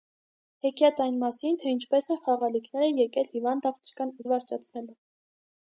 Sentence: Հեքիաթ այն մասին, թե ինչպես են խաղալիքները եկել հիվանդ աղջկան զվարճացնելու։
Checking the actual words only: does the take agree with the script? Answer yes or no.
yes